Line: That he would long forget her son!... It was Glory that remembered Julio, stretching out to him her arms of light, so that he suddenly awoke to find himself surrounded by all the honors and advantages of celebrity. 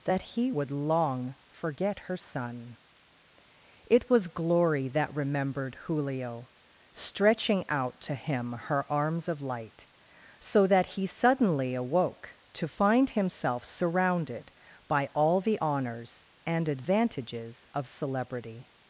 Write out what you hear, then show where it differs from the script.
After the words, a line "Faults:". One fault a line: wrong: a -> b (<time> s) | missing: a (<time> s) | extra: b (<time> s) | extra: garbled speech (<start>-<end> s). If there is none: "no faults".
That he would long forget her son!... It was Glory that remembered Julio, stretching out to him her arms of light, so that he suddenly awoke to find himself surrounded by all the honors and advantages of celebrity.
Faults:
no faults